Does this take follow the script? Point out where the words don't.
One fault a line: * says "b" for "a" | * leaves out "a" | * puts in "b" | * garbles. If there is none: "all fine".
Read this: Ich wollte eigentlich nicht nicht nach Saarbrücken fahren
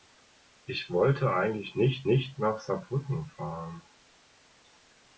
all fine